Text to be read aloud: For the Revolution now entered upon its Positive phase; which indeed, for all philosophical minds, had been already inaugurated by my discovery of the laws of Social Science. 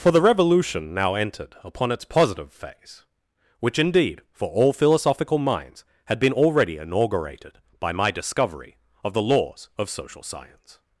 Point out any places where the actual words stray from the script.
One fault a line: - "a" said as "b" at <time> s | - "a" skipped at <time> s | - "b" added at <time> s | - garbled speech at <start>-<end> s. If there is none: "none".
none